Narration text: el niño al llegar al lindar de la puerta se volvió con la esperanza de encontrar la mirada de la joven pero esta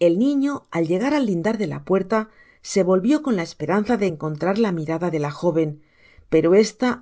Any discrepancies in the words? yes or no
no